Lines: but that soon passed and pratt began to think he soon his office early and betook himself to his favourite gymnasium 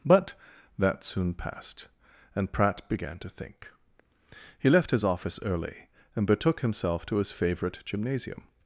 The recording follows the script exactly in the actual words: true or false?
false